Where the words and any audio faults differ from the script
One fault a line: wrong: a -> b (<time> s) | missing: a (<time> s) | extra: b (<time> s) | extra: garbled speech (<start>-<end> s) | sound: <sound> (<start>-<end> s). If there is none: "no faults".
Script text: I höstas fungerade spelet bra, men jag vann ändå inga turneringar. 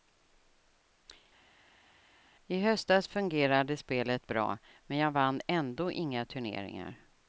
no faults